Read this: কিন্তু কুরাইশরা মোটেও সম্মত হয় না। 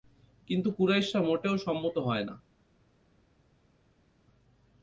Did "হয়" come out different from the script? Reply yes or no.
no